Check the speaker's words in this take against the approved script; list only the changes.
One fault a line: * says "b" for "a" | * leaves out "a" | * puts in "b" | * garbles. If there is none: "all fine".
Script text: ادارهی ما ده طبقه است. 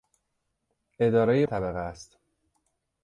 * leaves out "ما ده"